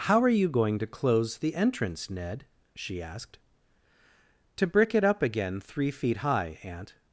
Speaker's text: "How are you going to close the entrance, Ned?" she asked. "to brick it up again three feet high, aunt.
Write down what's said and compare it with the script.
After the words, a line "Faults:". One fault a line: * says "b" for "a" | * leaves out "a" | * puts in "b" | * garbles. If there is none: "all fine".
"How are you going to close the entrance, Ned?" she asked. "to brick it up again three feet high, aunt.
Faults:
all fine